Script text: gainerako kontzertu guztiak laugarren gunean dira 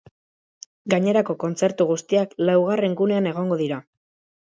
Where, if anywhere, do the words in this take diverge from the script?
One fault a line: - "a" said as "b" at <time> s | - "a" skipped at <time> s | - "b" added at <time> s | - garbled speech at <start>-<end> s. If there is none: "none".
- "egongo" added at 3.4 s